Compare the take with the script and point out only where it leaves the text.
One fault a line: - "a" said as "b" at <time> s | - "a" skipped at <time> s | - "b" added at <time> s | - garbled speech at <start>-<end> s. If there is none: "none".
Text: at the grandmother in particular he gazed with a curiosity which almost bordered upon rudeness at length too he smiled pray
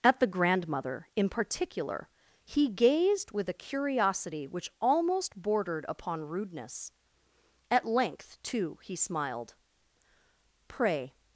none